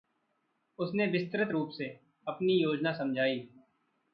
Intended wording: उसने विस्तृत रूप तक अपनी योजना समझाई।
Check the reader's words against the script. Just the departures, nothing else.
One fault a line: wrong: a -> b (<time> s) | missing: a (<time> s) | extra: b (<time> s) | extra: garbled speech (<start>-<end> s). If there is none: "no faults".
wrong: तक -> से (1.7 s)